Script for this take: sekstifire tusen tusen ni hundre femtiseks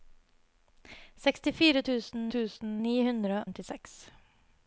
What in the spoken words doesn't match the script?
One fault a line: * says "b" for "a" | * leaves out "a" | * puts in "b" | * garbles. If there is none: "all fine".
all fine